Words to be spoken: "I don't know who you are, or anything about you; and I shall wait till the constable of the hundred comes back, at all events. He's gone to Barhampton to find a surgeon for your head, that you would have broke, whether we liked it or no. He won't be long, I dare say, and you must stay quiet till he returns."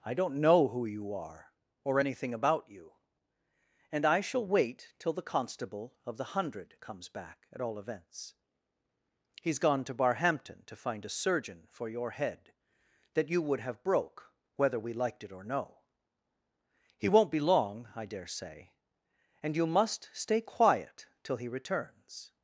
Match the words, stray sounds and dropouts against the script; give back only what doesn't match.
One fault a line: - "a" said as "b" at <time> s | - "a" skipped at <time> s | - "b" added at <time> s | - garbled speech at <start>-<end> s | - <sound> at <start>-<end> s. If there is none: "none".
none